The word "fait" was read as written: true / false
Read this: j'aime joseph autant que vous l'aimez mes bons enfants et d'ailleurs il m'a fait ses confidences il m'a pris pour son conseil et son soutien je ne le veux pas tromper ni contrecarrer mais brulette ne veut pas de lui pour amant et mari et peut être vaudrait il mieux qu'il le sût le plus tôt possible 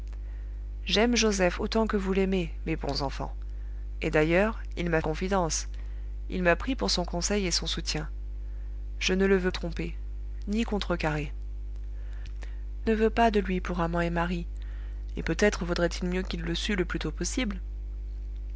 false